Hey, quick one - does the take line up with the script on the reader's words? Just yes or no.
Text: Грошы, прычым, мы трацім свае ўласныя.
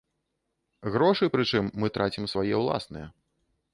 yes